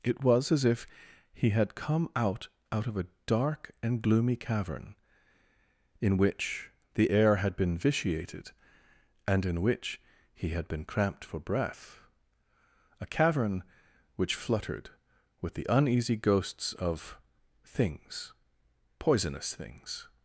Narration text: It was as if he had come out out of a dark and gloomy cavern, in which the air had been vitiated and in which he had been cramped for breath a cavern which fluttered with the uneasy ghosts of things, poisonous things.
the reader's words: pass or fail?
pass